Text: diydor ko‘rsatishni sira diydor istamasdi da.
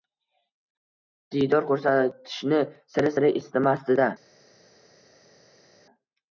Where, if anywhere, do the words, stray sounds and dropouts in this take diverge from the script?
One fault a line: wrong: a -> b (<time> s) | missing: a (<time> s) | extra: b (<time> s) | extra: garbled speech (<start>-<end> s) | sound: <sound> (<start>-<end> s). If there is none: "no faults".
wrong: diydor -> sira (3.1 s)